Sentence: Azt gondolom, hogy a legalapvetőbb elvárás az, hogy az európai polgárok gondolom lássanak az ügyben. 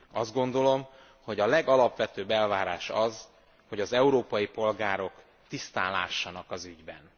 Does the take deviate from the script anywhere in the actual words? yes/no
yes